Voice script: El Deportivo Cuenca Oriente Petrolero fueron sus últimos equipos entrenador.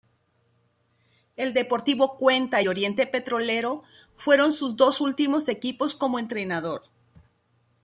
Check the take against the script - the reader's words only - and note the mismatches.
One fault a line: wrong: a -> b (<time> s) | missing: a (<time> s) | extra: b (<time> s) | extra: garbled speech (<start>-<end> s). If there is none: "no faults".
extra: y (2.6 s)
extra: dos (4.8 s)
extra: como (6.0 s)